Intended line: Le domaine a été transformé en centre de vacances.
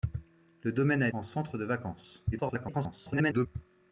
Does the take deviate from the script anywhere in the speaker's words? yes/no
yes